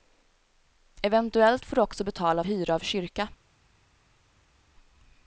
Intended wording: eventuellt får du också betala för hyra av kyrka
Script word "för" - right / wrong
wrong